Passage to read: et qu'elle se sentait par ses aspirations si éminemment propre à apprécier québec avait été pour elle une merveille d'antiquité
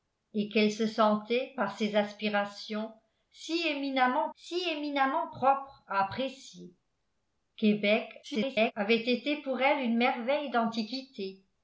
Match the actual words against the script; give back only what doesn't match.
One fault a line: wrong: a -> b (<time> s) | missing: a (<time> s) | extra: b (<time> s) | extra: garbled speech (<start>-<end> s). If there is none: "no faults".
extra: si éminemment (4.3 s)
extra: garbled speech (8.2-8.7 s)